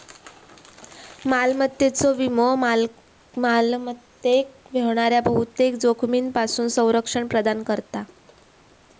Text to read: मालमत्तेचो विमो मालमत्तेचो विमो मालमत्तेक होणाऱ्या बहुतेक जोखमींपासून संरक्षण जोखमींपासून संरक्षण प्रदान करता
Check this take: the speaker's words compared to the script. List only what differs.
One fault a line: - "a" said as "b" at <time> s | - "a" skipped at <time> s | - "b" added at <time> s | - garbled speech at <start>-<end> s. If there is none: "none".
- "मालमत्तेचो विमो" skipped at 2.5 s
- "जोखमींपासून संरक्षण" skipped at 7.3 s